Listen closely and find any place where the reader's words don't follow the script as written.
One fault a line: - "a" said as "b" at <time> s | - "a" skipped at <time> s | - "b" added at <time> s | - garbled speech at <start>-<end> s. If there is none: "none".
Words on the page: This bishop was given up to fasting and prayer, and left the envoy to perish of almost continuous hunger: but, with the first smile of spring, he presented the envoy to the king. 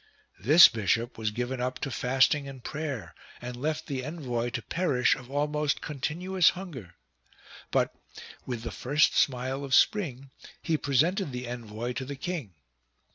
none